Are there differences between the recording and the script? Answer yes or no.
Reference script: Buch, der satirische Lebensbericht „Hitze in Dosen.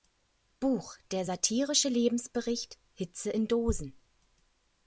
no